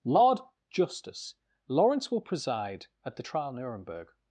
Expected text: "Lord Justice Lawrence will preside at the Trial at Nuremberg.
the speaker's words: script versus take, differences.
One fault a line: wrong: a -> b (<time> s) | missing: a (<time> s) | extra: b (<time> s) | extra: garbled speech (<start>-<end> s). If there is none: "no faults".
missing: at (3.5 s)